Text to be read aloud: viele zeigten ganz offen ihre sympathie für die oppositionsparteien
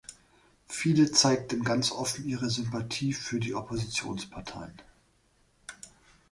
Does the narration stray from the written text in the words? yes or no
no